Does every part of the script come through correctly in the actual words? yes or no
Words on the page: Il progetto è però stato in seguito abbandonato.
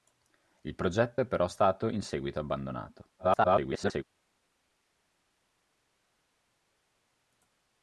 no